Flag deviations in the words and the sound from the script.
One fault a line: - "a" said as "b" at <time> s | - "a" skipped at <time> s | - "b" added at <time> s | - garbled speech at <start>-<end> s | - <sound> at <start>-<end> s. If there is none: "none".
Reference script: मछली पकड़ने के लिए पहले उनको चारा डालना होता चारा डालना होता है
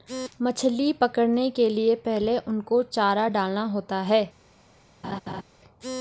- "चारा डालना होता" skipped at 4.0 s
- laugh at 5.0-5.4 s